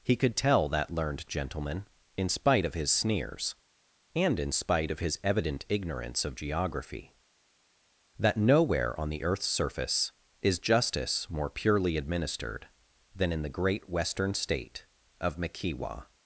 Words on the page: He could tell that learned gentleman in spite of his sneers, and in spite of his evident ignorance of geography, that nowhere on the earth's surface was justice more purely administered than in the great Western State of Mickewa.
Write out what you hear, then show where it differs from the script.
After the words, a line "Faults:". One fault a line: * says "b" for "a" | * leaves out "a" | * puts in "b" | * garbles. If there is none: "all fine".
He could tell that learned gentleman in spite of his sneers, and in spite of his evident ignorance of geography, that nowhere on the earth's surface is justice more purely administered than in the great Western State of Mickewa.
Faults:
* says "is" for "was"